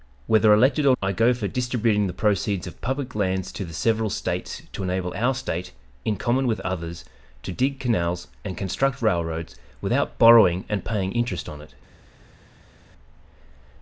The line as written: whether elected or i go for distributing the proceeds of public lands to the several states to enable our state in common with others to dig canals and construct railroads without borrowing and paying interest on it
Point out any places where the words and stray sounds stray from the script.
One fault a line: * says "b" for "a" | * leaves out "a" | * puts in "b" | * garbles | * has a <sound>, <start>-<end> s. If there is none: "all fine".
all fine